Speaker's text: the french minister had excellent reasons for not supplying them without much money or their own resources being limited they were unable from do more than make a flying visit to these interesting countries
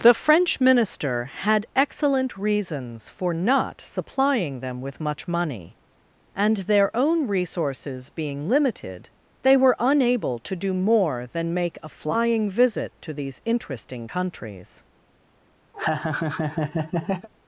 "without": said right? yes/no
no